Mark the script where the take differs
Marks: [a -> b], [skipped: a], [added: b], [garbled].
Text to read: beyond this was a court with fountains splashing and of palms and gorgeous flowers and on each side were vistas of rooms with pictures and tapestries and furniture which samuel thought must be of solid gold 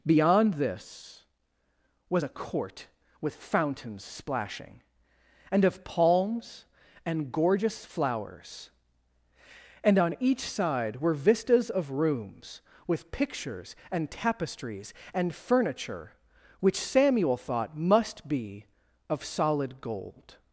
beyond this was a court with fountains splashing and of palms and gorgeous flowers and on each side were vistas of rooms with pictures and tapestries and furniture which samuel thought must be of solid gold